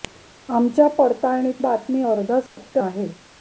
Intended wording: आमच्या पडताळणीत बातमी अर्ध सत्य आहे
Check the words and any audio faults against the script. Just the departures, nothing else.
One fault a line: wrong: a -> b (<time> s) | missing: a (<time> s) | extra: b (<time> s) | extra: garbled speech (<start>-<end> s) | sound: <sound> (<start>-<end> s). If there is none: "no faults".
sound: dropout (2.5-2.6 s)